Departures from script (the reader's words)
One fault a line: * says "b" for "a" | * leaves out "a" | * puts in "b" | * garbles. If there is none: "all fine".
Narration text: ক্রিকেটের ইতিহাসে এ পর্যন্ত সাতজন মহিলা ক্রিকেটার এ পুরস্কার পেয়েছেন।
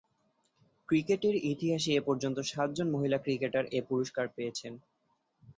all fine